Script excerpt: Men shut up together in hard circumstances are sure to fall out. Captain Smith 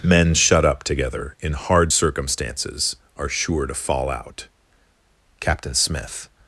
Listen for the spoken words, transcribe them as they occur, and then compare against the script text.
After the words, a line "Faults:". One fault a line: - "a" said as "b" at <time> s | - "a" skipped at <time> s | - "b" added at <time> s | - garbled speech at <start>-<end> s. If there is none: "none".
Men shut up together in hard circumstances are sure to fall out. Captain Smith
Faults:
none